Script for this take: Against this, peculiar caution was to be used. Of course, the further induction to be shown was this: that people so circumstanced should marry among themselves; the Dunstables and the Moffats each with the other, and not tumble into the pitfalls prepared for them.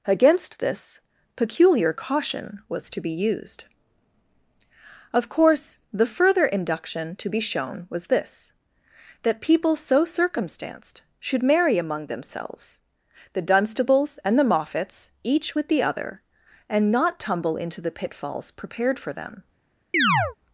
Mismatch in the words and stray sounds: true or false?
true